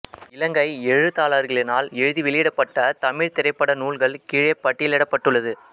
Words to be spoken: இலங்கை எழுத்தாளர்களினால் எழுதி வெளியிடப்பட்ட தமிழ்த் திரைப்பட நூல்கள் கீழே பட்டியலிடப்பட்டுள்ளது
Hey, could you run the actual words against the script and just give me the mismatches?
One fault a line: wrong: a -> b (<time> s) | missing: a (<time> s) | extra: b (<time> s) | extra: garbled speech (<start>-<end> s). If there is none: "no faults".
no faults